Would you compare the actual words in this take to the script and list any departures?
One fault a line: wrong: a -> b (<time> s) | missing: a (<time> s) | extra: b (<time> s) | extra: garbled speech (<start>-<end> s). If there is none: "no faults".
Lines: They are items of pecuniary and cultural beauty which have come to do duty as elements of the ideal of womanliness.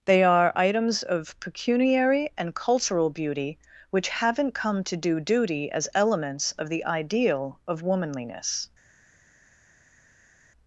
wrong: have -> haven't (4.1 s)